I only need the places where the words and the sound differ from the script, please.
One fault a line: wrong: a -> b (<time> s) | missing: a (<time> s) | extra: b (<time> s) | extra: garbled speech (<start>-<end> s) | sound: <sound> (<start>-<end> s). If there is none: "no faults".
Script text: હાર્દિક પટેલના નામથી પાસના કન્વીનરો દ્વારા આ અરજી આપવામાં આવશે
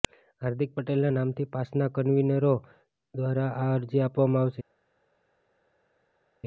no faults